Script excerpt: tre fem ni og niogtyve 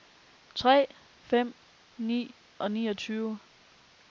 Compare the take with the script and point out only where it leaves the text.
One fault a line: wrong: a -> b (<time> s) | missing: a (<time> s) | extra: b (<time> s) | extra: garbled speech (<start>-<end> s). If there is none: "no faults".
no faults